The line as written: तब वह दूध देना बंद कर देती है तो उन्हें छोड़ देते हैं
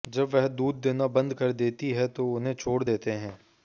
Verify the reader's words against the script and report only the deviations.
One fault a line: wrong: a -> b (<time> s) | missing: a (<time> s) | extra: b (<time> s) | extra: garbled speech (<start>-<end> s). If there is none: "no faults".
wrong: तब -> जब (0.1 s)